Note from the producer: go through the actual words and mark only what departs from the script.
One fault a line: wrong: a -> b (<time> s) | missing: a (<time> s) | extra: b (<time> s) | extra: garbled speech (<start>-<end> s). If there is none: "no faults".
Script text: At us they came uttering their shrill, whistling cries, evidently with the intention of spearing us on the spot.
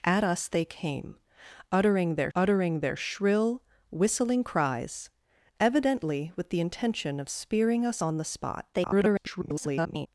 extra: uttering their (2.3 s)
extra: garbled speech (8.7-10.1 s)